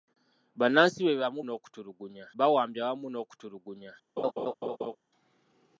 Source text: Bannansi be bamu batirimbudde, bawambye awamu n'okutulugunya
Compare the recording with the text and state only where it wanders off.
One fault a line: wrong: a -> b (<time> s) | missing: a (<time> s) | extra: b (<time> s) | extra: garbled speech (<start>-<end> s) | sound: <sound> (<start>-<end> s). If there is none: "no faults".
wrong: batirimbudde -> n'okutulugunya (1.4 s)
sound: laugh (4.2-5.0 s)